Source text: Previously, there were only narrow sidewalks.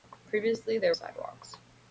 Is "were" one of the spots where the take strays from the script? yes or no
yes